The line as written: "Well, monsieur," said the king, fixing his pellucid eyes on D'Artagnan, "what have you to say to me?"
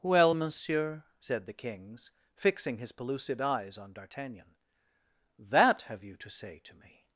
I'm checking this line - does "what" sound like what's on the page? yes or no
no